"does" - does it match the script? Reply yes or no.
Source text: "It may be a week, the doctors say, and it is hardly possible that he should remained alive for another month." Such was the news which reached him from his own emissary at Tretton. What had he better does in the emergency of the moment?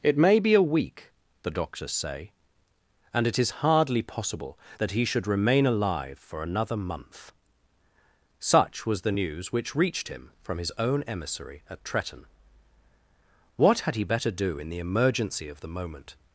no